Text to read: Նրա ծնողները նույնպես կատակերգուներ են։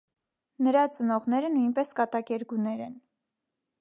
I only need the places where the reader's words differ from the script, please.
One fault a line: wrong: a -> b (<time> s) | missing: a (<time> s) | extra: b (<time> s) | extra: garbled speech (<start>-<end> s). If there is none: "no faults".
no faults